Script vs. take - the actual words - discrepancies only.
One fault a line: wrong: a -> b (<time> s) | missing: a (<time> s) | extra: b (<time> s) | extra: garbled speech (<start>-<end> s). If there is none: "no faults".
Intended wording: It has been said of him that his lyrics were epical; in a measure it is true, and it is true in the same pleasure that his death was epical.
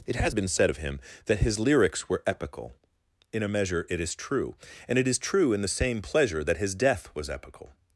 no faults